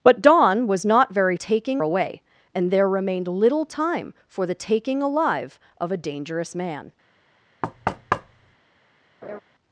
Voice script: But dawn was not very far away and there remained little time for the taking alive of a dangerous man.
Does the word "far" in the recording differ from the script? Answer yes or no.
yes